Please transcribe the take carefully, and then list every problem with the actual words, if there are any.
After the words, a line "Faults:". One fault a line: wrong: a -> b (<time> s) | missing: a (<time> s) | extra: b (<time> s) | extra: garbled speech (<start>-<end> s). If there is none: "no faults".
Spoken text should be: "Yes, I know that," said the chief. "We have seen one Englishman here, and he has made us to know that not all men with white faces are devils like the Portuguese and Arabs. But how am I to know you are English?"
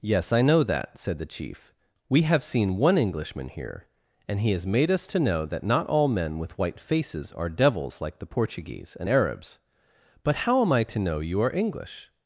"Yes, I know that," said the chief. "We have seen one Englishman here, and he has made us to know that not all men with white faces are devils like the Portuguese and Arabs. But how am I to know you are English?"
Faults:
no faults